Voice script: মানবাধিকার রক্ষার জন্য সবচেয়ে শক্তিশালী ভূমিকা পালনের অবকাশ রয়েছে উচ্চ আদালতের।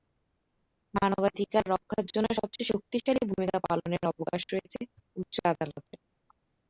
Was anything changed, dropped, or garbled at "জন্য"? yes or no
no